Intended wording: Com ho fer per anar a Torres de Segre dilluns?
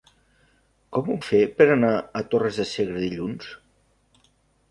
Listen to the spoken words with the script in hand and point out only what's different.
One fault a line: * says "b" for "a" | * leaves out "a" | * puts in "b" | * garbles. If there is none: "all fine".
all fine